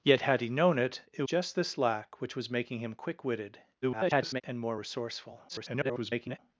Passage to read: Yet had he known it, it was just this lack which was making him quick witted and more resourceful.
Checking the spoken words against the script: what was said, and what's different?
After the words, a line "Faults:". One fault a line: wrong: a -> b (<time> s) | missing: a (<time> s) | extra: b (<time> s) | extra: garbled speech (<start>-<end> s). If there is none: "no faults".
Yet had he known it, it just this lack which was making him quick witted [garbled] and more resourceful. [garbled]
Faults:
missing: was (1.2 s)
extra: garbled speech (3.8-4.4 s)
extra: garbled speech (5.5-6.4 s)